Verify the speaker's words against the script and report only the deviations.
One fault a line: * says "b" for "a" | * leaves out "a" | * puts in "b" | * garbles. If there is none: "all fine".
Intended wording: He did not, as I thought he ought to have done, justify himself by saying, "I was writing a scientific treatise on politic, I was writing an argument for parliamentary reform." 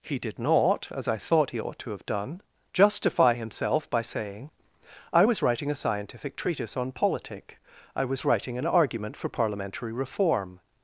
all fine